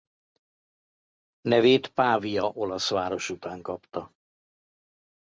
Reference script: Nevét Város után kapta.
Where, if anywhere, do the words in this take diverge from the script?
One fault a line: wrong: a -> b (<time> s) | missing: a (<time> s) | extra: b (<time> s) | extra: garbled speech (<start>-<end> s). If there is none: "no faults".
extra: Pavia olasz (1.9 s)